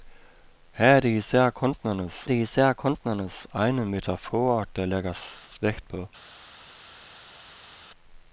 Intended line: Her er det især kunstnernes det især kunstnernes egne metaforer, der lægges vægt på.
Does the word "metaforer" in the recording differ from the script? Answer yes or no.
no